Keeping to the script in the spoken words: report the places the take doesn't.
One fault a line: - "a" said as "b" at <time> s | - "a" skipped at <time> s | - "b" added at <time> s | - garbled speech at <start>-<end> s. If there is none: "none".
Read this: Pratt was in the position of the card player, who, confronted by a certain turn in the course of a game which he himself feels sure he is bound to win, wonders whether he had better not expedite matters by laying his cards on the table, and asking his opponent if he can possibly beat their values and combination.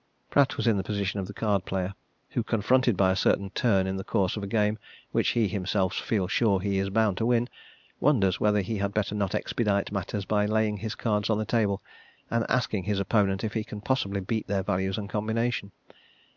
none